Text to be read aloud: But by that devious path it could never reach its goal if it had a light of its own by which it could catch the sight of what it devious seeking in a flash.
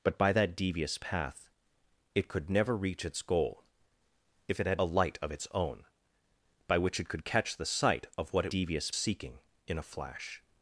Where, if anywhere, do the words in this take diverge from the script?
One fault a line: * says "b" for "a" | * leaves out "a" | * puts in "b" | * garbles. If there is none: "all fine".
all fine